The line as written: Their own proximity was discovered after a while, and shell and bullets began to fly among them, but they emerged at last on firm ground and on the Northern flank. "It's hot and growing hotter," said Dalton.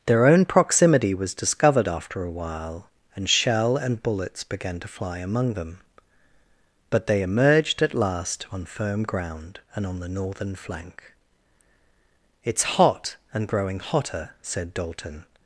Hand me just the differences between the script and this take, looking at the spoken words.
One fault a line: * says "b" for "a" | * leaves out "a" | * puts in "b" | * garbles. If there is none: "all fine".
all fine